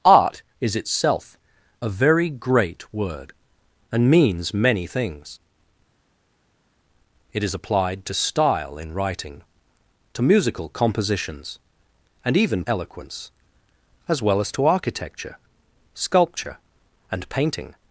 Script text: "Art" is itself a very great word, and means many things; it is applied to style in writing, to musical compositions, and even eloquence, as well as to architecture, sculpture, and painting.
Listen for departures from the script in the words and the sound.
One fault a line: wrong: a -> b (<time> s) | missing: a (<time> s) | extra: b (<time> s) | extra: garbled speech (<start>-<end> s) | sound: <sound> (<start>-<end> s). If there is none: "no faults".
no faults